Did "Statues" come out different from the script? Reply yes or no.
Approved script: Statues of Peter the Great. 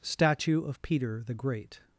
yes